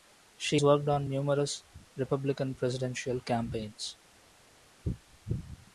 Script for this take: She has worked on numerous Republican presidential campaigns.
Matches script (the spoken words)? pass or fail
fail